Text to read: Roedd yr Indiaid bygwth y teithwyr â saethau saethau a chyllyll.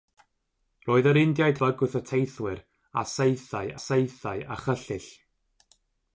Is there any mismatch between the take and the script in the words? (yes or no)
no